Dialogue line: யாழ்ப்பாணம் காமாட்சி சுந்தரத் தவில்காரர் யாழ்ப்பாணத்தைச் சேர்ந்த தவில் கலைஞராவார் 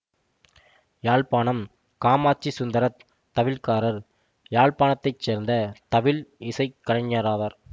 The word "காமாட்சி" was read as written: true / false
true